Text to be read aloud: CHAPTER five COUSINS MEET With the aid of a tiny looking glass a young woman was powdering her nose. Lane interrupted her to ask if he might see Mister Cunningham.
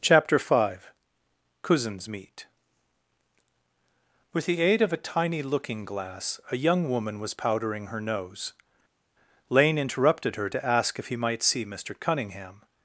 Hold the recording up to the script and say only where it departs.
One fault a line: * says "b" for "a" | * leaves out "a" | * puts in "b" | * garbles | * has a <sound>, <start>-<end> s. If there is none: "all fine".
all fine